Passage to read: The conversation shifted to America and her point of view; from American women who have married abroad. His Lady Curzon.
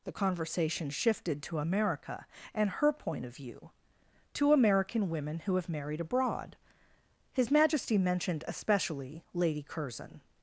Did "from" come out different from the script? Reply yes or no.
yes